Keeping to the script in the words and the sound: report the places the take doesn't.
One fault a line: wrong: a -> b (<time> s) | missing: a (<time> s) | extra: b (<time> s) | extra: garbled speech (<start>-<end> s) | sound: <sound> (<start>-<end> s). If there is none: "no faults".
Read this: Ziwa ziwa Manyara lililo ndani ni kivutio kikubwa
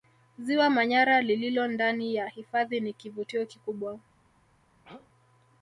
missing: ziwa (0.7 s)
extra: ya hifadhi (2.1 s)
sound: throat clearing (4.8-5.1 s)